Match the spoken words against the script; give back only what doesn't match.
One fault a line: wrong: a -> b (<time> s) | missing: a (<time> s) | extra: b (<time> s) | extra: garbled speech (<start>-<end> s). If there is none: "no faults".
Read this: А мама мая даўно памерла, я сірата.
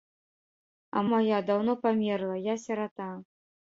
missing: мама (1.0 s)